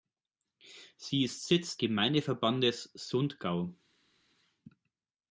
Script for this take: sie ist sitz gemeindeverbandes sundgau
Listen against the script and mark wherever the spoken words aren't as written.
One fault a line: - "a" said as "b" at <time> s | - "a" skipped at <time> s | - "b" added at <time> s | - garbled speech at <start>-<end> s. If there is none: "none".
none